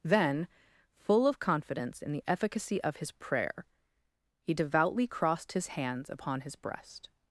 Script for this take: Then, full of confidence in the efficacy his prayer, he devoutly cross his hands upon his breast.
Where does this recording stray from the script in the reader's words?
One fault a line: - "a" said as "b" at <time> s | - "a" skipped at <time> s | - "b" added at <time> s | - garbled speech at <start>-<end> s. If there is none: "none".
- "of" added at 2.8 s
- "cross" said as "crossed" at 5.0 s